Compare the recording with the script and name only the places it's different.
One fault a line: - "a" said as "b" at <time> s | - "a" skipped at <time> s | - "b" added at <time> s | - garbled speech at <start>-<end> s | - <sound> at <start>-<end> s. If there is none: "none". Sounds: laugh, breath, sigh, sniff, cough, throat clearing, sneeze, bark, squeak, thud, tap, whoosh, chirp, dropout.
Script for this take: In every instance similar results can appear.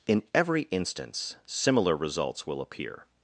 - "can" said as "will" at 2.5 s